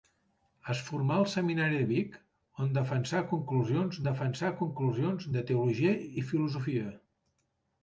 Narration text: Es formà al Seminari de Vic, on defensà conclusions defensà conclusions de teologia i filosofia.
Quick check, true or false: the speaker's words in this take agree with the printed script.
true